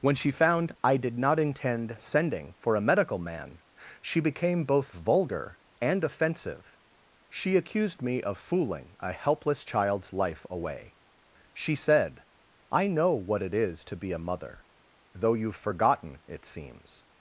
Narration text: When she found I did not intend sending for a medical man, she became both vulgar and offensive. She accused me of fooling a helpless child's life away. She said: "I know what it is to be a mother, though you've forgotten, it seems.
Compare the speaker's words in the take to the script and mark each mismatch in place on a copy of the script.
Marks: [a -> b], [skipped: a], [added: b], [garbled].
When she found I did not intend sending for a medical man, she became both vulgar and offensive. She accused me of fooling a helpless child's life away. She said: "I know what it is to be a mother, though you've forgotten, it seems.